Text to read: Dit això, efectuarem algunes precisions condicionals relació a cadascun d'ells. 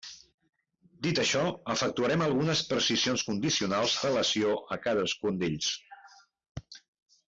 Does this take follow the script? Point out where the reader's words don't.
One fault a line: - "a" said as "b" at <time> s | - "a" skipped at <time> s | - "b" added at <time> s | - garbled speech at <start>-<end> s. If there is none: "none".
none